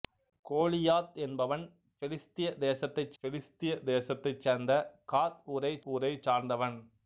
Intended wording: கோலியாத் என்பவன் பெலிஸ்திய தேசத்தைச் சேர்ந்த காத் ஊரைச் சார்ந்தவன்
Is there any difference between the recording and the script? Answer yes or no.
yes